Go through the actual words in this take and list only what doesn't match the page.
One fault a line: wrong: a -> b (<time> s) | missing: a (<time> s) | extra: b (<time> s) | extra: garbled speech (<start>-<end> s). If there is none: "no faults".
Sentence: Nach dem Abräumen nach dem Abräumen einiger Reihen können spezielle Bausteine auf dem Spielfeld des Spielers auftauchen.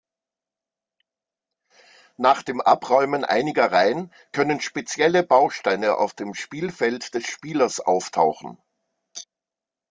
missing: nach dem Abräumen (3.2 s)